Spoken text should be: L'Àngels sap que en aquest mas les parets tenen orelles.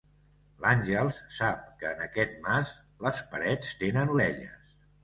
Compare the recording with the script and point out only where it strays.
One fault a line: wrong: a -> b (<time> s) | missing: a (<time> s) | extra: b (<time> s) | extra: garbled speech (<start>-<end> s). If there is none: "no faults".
no faults